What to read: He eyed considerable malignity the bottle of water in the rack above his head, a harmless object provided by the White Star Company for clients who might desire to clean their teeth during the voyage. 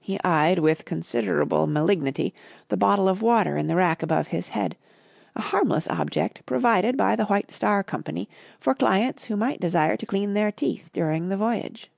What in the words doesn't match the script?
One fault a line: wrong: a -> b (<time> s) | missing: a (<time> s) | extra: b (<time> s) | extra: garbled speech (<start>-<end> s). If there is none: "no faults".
extra: with (0.6 s)